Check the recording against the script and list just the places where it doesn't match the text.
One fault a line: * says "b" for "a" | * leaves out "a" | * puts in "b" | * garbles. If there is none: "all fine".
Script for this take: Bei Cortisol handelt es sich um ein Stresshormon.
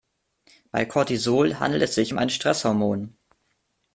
all fine